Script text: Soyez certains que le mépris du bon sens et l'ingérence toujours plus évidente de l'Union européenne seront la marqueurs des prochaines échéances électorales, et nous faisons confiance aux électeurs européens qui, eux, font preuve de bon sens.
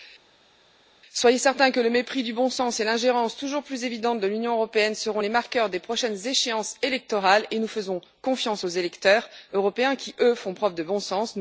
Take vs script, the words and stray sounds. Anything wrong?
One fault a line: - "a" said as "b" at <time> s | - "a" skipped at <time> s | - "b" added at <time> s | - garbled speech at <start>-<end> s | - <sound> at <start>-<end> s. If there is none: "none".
- "la" said as "les" at 5.2 s